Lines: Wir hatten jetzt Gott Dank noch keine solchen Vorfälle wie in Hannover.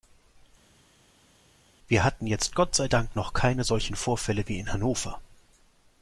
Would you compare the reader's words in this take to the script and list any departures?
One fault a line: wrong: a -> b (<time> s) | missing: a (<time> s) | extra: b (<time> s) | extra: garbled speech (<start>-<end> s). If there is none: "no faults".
extra: sei (2.7 s)